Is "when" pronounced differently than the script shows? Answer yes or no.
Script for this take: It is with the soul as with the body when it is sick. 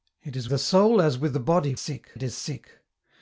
yes